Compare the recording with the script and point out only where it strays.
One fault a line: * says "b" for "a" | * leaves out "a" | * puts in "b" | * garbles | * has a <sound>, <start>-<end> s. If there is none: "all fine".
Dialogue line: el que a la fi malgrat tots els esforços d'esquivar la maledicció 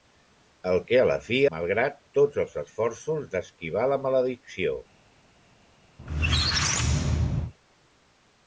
* has a squeak, 6.0-7.5 s